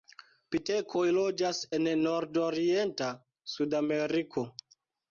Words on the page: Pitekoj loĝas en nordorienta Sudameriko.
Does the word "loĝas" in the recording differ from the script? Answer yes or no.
no